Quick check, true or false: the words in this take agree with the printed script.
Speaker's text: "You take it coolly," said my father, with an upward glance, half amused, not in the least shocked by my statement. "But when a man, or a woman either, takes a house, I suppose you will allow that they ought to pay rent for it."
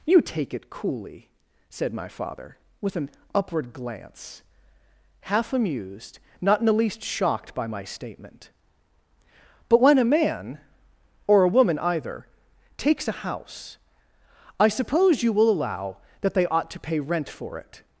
true